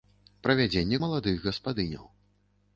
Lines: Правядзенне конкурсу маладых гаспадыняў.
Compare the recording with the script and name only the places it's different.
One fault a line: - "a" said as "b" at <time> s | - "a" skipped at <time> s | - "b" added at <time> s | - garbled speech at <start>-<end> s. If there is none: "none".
- "конкурсу" skipped at 1.0 s